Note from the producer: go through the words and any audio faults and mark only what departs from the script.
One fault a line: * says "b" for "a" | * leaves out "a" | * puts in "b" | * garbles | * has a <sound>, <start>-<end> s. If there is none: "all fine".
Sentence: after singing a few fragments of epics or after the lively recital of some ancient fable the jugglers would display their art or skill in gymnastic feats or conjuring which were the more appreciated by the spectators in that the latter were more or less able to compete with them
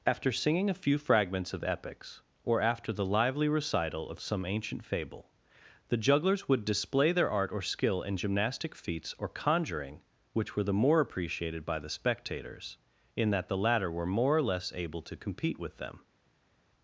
all fine